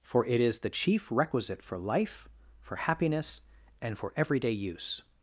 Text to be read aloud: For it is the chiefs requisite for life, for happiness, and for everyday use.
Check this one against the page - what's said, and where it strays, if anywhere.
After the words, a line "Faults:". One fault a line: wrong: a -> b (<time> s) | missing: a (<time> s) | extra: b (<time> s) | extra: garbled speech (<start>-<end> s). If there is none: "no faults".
For it is the chief requisite for life, for happiness, and for everyday use.
Faults:
wrong: chiefs -> chief (0.7 s)